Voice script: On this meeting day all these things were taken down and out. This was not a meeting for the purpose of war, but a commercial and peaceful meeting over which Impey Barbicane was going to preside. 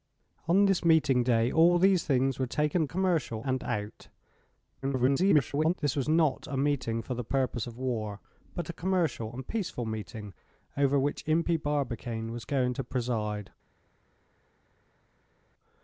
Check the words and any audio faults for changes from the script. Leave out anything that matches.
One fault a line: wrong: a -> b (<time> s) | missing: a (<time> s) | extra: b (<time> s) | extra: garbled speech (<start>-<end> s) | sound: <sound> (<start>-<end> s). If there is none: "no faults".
wrong: down -> commercial (2.8 s)
extra: garbled speech (4.8-5.7 s)